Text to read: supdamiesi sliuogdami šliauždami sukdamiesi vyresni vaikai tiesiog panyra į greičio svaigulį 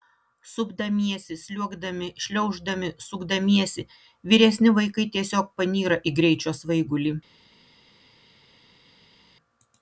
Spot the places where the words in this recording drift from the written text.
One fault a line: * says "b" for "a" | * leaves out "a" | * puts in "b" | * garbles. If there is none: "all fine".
all fine